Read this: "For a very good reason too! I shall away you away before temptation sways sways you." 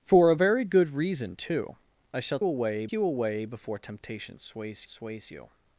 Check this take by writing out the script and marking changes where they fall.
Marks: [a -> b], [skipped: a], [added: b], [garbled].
"For a very good reason too! I shall away you away before temptation sways sways you."